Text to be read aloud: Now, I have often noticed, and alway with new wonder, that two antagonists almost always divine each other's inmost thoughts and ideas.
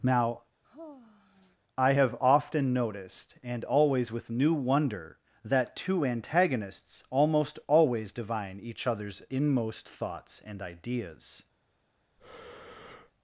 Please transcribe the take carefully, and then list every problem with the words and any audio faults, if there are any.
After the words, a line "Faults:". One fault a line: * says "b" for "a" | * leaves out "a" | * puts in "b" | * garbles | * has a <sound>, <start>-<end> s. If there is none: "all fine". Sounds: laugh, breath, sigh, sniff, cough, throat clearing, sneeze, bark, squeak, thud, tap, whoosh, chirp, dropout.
Now, I have often noticed, and always with new wonder, that two antagonists almost always divine each other's inmost thoughts and ideas.
Faults:
* has a sigh, 0.6-1.6 s
* says "always" for "alway"
* has a breath, 12.2-13.1 s